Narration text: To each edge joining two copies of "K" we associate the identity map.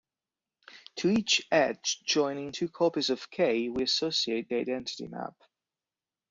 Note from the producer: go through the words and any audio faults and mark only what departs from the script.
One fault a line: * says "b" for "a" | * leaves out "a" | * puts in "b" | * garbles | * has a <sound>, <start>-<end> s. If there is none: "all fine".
all fine